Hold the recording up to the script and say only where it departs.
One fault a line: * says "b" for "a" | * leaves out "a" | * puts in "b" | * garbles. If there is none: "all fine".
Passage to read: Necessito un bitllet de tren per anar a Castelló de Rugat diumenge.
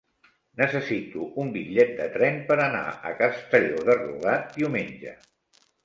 all fine